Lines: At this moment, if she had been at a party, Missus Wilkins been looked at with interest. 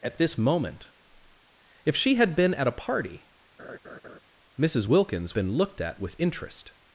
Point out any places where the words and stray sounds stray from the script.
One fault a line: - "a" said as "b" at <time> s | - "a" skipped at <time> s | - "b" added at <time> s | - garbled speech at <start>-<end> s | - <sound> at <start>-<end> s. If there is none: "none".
- laugh at 3.6-4.2 s